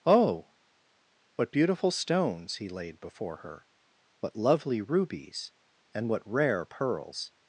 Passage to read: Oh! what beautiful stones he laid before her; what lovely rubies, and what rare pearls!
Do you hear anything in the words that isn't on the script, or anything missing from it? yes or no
no